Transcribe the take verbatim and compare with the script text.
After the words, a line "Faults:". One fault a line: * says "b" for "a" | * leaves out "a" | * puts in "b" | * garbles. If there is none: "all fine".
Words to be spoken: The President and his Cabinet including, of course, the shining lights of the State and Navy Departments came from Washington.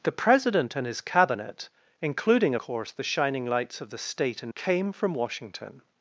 The President and his Cabinet including, course, the shining lights of the State and Came from Washington.
Faults:
* leaves out "of"
* leaves out "Navy Departments"